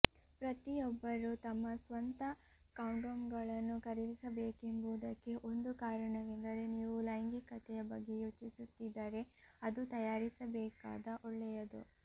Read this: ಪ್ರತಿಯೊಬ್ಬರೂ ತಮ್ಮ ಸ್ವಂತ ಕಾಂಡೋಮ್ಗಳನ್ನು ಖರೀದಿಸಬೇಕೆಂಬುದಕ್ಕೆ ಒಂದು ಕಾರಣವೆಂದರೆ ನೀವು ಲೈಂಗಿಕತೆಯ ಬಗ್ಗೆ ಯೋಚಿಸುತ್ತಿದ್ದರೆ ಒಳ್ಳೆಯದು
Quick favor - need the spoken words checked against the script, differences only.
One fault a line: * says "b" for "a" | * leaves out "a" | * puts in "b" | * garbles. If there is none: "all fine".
* puts in "ಅದು ತಯಾರಿಸಬೇಕಾದ"